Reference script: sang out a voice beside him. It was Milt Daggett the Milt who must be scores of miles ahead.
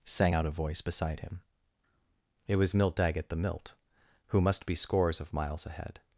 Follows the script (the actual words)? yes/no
yes